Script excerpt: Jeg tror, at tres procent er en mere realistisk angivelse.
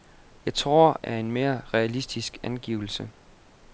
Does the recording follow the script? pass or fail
fail